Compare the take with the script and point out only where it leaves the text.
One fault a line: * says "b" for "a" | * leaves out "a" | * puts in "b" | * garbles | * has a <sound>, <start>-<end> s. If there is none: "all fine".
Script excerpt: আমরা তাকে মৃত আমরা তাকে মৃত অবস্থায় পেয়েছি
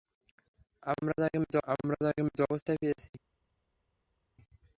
all fine